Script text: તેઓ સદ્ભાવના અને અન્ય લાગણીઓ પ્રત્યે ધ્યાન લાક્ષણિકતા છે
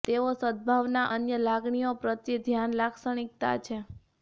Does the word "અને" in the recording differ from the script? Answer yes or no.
yes